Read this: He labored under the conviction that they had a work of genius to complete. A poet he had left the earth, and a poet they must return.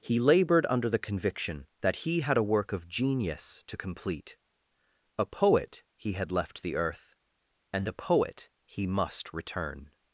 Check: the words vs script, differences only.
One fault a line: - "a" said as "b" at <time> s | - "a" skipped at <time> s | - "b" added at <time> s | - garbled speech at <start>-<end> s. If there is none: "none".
- "they" said as "he" at 2.0 s
- "they" said as "he" at 8.6 s